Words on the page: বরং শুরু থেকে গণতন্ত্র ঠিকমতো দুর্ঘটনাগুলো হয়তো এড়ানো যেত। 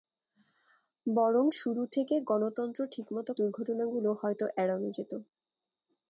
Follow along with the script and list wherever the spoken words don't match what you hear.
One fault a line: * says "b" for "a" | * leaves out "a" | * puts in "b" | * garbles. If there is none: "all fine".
all fine